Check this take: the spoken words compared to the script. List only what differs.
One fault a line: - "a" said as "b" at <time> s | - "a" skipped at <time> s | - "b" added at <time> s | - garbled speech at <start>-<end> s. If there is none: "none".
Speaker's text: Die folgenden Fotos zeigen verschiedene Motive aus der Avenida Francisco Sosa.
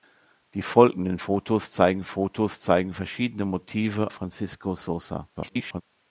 - "Fotos zeigen" added at 2.0 s
- "aus der Avenida" skipped at 4.1 s
- garbled speech at 5.4-5.8 s